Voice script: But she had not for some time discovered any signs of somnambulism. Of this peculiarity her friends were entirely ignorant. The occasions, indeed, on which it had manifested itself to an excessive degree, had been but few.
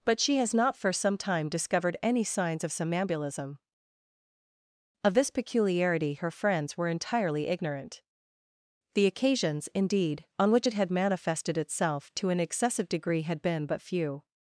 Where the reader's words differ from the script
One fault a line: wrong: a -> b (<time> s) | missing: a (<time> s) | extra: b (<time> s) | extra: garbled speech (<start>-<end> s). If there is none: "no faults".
wrong: had -> has (0.4 s)